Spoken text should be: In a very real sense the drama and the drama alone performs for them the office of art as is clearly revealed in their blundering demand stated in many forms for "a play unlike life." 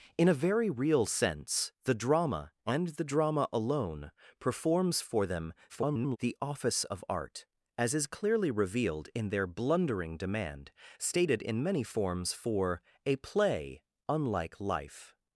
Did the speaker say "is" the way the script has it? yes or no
yes